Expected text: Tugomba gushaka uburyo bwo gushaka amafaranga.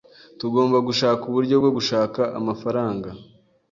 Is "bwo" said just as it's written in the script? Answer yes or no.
yes